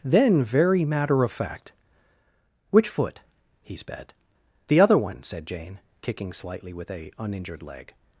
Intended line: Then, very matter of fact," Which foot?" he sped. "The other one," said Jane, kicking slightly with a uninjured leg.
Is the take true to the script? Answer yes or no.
yes